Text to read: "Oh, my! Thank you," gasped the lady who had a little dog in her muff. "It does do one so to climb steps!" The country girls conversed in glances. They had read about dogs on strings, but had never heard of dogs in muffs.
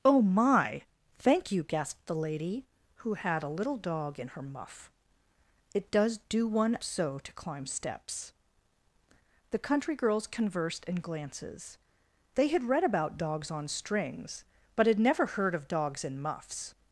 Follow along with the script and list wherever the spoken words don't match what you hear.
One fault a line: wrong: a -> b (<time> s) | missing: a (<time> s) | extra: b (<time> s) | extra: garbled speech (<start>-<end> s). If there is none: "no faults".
no faults